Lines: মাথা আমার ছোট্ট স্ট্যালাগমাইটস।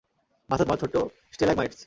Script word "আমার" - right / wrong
right